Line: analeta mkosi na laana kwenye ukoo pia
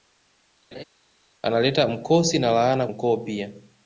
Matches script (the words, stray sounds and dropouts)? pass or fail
fail